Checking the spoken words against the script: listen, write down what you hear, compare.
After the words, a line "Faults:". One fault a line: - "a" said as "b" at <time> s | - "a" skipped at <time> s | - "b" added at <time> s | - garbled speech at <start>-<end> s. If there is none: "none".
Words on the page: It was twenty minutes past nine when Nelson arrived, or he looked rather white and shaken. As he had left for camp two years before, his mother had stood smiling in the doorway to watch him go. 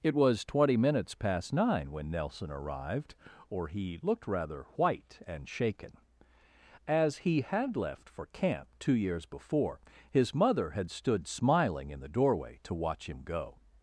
It was twenty minutes past nine when Nelson arrived, or he looked rather white and shaken. As he had left for camp two years before, his mother had stood smiling in the doorway to watch him go.
Faults:
none